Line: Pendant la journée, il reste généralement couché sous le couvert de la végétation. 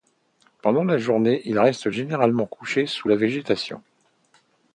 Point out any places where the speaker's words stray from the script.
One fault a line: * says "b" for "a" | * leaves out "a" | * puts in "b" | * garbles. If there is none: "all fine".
* leaves out "le couvert de"